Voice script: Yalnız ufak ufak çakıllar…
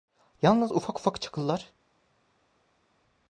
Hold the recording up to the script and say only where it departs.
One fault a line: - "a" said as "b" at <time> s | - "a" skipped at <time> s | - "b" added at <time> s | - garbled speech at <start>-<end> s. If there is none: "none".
none